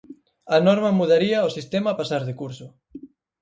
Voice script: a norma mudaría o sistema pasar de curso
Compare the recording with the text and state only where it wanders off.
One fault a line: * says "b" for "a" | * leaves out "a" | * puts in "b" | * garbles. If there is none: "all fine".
all fine